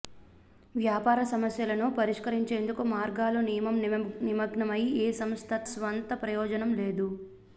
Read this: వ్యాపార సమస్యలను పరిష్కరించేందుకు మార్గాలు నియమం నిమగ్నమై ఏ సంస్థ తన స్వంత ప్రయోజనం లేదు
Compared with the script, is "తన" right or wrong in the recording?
wrong